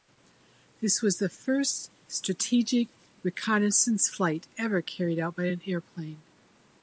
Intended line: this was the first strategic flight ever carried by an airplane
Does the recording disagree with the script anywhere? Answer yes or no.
yes